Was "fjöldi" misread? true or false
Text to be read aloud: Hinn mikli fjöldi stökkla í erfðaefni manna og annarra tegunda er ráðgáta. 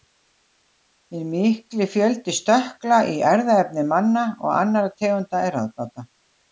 false